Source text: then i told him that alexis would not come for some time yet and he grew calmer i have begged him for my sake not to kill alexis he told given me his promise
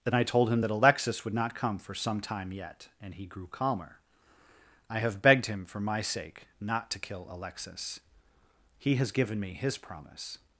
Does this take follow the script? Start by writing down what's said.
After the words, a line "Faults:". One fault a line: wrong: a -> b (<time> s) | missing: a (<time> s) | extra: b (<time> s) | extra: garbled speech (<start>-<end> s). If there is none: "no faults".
then i told him that alexis would not come for some time yet and he grew calmer i have begged him for my sake not to kill alexis he has given me his promise
Faults:
wrong: told -> has (9.0 s)